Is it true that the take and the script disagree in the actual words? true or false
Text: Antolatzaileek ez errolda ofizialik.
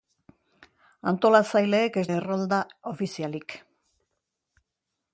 false